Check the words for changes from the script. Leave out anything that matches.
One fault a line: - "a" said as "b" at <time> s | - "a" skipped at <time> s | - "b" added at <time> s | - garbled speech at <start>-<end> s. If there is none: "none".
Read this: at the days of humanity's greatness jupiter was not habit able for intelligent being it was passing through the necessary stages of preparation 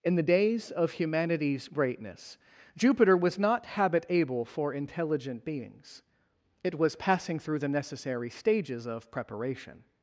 - "at" said as "in" at 0.0 s
- "being" said as "beings" at 5.5 s